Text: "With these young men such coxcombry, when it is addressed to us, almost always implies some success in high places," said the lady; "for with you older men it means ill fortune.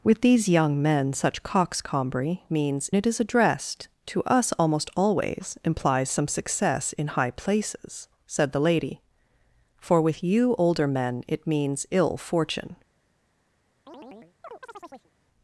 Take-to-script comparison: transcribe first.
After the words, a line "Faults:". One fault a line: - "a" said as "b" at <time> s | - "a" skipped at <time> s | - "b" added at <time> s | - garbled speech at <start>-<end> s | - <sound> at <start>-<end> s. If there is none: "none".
"With these young men such coxcombry, means it is addressed to us, almost always implies some success in high places," said the lady; "for with you older men it means ill fortune.
Faults:
- "when" said as "means" at 2.5 s
- chirp at 13.9-15.1 s